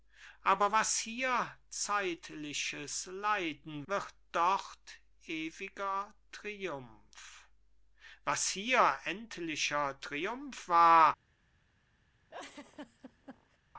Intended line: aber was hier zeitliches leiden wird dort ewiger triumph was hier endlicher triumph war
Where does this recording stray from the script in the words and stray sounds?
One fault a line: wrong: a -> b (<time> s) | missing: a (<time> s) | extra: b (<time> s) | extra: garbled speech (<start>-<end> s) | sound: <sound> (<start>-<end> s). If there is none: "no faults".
sound: laugh (12.3-13.6 s)